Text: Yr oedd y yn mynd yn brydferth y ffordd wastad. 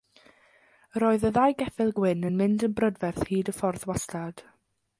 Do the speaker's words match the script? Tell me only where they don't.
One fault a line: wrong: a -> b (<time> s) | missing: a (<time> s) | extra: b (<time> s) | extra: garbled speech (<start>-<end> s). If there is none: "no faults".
extra: ddau geffyl gwyn (1.4 s)
extra: hyd (3.3 s)